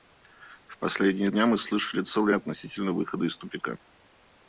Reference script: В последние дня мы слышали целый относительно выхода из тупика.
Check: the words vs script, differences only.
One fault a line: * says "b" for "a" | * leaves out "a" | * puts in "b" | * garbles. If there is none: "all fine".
all fine